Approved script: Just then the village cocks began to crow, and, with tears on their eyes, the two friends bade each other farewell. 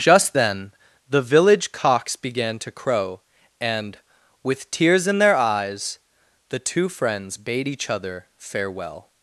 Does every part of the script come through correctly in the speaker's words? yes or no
no